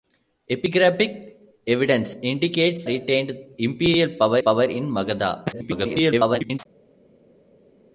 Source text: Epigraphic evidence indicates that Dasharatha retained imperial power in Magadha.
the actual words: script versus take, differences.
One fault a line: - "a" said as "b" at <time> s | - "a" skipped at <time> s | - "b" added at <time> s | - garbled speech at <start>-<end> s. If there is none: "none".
- "that Dasharatha" skipped at 2.9 s
- "power" added at 4.4 s
- garbled speech at 5.5-6.6 s